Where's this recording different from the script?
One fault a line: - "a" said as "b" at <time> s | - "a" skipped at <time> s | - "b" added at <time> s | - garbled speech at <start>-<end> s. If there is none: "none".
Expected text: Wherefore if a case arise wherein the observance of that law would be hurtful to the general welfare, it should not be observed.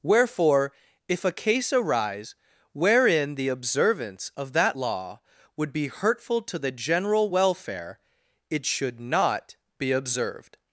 none